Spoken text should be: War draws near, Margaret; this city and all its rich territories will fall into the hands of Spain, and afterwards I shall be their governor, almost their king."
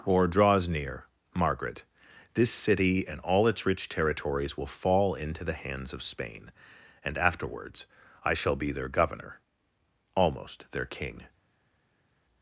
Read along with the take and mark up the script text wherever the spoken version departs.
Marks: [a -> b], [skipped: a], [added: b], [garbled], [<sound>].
[War -> Or] draws near, Margaret; this city and all its rich territories will fall into the hands of Spain, and afterwards I shall be their governor, almost their king."